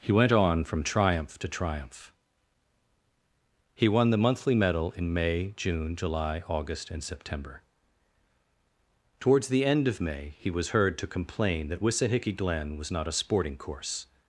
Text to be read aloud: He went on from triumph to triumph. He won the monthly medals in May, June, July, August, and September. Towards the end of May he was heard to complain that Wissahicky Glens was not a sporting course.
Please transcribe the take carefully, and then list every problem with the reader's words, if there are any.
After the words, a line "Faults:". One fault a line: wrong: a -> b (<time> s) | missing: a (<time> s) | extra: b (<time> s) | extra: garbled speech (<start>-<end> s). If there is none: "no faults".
He went on from triumph to triumph. He won the monthly medal in May, June, July, August, and September. Towards the end of May he was heard to complain that Wissahicky Glen was not a sporting course.
Faults:
wrong: medals -> medal (4.5 s)
wrong: Glens -> Glen (12.3 s)